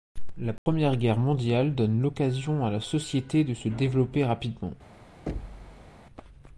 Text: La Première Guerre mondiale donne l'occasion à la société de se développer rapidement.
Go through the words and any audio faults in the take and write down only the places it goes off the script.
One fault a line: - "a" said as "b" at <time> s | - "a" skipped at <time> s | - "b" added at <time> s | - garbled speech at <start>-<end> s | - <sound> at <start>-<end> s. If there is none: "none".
- dropout at 0.6-0.7 s
- thud at 5.3-5.9 s